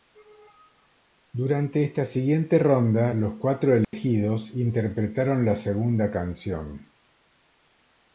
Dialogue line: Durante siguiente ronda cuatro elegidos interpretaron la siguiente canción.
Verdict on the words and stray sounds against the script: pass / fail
fail